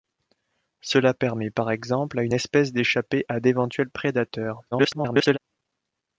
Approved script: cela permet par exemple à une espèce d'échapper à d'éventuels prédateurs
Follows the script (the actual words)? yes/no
no